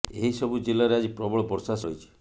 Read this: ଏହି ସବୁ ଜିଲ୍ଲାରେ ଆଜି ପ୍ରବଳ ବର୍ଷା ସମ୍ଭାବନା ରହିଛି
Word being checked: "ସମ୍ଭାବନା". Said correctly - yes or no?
no